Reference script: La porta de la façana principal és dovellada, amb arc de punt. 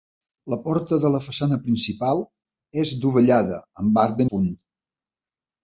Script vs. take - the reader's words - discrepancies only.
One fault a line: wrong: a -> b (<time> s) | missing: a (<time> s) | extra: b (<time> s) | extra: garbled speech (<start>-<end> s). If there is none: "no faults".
no faults